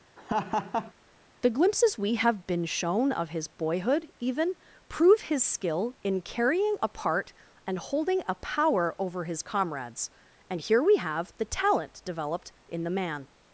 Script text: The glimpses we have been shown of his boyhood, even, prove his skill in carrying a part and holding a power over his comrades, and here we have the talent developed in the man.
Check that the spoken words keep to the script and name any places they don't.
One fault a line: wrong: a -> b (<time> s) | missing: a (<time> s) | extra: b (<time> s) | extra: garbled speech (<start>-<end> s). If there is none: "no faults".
no faults